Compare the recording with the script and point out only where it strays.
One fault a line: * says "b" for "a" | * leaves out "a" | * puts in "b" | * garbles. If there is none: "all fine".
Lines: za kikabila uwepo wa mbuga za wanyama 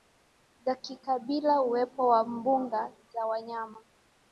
all fine